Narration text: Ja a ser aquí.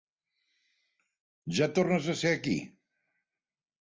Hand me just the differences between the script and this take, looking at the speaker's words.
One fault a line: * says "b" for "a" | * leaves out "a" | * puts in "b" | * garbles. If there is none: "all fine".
* puts in "tornes"